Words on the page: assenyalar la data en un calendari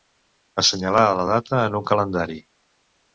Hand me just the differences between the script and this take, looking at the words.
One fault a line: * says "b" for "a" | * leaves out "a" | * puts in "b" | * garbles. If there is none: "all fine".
all fine